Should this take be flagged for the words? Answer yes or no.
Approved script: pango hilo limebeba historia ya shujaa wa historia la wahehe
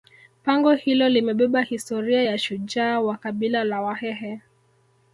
yes